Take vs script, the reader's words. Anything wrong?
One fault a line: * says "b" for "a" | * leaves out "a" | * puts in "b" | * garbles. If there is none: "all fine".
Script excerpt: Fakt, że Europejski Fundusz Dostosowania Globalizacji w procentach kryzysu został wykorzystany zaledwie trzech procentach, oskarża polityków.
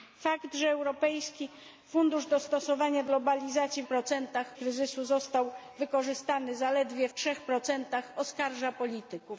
all fine